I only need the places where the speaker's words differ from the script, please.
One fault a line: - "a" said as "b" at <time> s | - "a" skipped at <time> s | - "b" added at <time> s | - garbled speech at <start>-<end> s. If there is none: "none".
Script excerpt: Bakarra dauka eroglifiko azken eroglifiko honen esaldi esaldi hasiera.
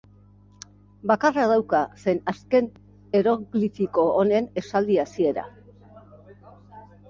- "eroglifiko" said as "zen" at 2.0 s
- "esaldi" skipped at 5.0 s